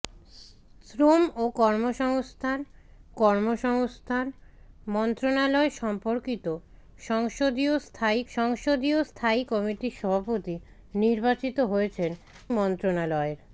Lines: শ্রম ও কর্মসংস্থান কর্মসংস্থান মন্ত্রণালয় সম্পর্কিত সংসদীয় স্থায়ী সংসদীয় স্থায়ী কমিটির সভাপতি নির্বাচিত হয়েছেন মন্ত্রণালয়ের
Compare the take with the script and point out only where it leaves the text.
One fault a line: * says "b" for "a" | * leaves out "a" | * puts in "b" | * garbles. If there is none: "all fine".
all fine